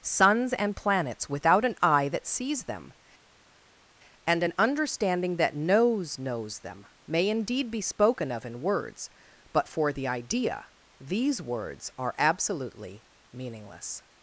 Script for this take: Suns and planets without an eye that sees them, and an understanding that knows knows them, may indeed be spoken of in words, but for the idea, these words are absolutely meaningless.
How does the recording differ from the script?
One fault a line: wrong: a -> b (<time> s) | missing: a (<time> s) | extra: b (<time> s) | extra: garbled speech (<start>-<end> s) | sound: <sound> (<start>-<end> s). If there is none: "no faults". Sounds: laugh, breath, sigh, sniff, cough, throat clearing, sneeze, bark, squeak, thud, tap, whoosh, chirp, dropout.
no faults